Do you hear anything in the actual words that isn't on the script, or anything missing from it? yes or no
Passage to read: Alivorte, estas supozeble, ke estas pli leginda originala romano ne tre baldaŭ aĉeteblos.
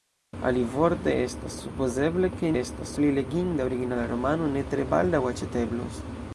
no